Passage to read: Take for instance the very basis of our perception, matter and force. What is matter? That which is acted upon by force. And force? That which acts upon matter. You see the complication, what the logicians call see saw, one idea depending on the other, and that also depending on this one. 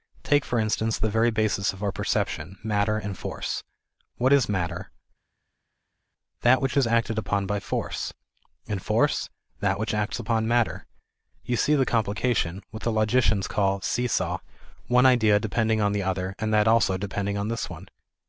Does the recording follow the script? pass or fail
pass